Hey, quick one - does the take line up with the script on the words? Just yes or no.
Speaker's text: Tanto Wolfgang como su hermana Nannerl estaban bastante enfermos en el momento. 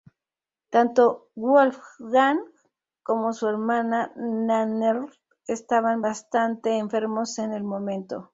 yes